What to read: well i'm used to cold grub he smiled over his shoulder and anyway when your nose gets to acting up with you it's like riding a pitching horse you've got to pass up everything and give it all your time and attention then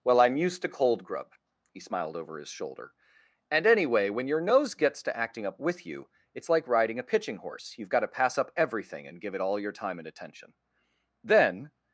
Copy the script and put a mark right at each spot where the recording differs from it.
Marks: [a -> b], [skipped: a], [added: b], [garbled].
well i'm used to cold grub he smiled over his shoulder and anyway when your nose gets to acting up with you it's like riding a pitching horse you've got to pass up everything and give it all your time and attention then